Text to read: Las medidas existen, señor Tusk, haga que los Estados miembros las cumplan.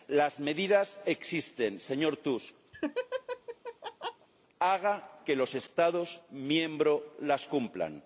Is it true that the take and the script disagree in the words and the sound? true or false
true